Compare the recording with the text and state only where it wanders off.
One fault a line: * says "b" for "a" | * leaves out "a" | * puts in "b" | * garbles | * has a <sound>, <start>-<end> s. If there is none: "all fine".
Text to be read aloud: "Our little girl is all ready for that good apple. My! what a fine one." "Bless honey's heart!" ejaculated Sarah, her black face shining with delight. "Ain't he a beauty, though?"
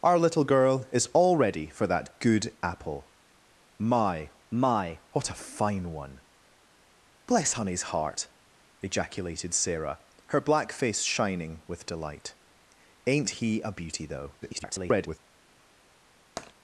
* puts in "my"
* garbles
* has a tap, 16.4-16.5 s